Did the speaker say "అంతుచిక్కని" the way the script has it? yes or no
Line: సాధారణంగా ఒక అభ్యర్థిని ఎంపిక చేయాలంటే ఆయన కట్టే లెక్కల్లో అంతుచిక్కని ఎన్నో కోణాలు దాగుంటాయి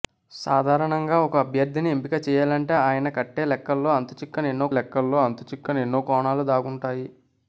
yes